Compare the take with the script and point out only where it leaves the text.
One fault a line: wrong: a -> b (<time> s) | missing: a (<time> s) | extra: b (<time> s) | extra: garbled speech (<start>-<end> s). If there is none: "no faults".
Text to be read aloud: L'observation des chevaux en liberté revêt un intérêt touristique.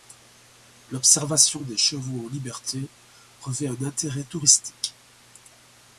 no faults